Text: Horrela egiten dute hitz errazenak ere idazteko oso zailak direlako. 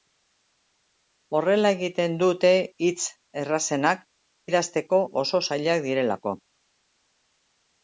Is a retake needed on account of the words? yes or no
yes